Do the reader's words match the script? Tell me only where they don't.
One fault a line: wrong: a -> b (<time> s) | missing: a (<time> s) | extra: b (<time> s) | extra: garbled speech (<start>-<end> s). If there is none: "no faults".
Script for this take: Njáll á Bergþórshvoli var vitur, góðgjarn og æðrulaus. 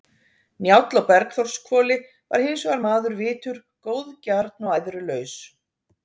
extra: hins vegar maður (2.5 s)